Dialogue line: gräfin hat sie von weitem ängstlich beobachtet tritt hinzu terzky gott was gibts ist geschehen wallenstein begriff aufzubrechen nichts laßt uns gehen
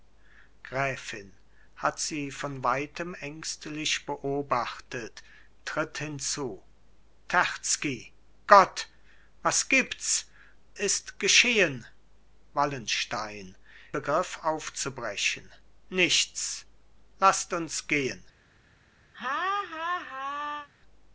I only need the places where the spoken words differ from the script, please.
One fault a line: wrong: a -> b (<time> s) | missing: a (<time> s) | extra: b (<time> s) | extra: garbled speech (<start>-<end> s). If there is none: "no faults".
no faults